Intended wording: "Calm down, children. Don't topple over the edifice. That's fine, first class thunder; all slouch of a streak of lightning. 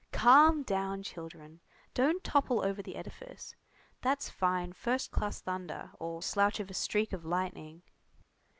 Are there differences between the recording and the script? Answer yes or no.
no